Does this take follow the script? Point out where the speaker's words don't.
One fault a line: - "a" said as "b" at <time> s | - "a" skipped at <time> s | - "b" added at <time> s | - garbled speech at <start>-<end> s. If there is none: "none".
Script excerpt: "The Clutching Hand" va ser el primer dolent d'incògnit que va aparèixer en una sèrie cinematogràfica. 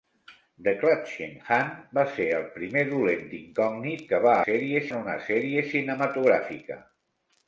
- "aparèixer" said as "sèrie" at 4.5 s